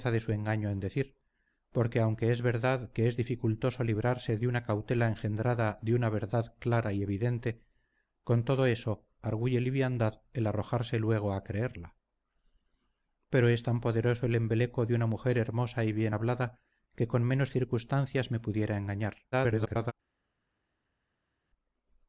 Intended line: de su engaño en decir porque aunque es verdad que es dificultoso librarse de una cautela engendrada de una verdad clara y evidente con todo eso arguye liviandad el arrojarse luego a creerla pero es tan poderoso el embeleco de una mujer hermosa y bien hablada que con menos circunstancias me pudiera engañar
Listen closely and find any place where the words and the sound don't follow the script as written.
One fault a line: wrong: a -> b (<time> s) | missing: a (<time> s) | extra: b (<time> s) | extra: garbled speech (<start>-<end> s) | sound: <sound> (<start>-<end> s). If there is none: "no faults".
extra: garbled speech (19.3-19.9 s)